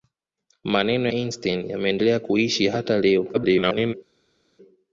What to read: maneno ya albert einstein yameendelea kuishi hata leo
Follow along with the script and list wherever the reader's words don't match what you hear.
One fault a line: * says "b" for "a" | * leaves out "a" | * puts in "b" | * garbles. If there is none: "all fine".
* leaves out "ya albert"
* garbles